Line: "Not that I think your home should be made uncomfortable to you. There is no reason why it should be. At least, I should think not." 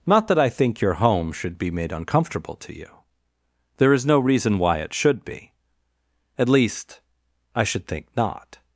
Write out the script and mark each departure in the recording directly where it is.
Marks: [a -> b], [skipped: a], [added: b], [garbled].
"Not that I think your home should be made uncomfortable to you. There is no reason why it should be. At least, I should think not."